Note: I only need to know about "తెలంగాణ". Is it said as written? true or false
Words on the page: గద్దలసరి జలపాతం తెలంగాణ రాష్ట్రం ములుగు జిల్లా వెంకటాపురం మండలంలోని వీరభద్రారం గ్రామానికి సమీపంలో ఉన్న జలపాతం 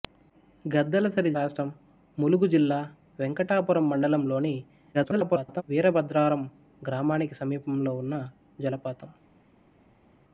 false